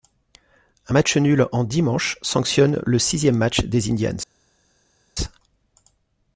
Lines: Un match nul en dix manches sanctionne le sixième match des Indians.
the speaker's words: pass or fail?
pass